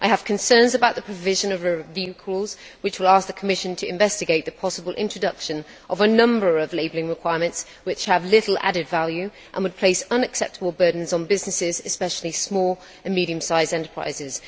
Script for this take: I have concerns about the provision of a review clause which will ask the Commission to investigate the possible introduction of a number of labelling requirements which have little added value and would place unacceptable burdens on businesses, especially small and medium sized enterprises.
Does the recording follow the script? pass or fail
pass